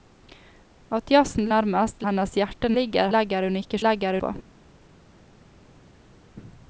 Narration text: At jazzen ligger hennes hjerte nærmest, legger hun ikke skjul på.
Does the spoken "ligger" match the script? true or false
false